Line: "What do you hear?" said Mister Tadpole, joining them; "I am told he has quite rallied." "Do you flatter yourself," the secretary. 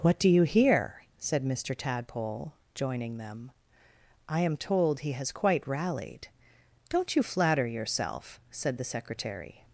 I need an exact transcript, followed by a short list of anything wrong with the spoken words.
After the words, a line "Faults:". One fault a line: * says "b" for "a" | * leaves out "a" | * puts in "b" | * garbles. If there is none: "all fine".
"What do you hear?" said Mister Tadpole, joining them; "I am told he has quite rallied." "Don't you flatter yourself," said the secretary.
Faults:
* says "Don't" for "Do"
* puts in "said"